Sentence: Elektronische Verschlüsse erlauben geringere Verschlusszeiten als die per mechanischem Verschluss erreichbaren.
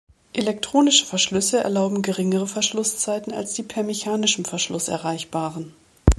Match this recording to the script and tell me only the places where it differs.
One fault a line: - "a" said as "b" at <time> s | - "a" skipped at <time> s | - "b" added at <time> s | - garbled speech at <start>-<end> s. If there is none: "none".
none